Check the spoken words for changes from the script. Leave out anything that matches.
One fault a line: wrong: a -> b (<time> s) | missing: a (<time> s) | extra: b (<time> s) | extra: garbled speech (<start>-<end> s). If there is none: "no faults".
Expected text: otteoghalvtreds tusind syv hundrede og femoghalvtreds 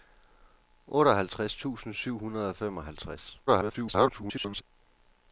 extra: garbled speech (3.5-4.6 s)